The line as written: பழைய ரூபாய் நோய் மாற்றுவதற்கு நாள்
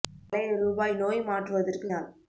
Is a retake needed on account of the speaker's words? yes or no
no